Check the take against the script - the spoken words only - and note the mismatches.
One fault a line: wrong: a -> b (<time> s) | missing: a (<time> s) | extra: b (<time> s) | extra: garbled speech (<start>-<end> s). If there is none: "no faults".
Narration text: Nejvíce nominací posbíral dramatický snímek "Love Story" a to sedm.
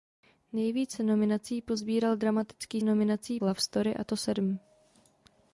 wrong: snímek -> nominací (2.8 s)